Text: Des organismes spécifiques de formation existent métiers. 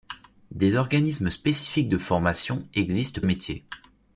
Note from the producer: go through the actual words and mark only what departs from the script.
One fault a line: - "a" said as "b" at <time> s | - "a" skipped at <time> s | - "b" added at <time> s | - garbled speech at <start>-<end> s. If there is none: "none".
none